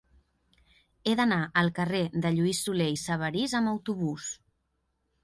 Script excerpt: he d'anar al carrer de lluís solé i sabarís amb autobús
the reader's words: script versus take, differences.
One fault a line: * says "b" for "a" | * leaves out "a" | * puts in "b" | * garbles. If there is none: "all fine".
all fine